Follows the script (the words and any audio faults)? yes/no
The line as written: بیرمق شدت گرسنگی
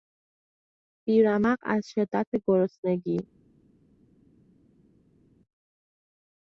no